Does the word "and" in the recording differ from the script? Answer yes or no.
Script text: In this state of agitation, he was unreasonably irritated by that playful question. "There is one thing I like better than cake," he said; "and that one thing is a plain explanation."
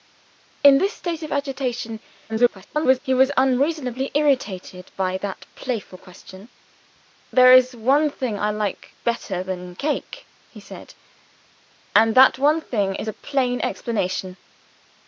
no